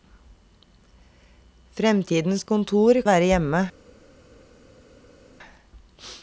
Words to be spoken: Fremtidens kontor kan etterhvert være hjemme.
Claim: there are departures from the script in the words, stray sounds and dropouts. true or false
true